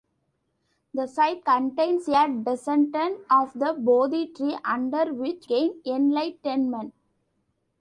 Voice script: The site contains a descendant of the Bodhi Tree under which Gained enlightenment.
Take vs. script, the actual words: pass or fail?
pass